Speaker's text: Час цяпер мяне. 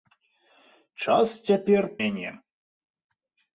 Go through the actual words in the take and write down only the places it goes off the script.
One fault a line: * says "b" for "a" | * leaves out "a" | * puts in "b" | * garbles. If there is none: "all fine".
all fine